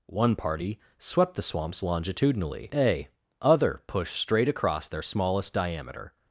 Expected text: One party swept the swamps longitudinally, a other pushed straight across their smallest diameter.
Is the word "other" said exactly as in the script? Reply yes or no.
yes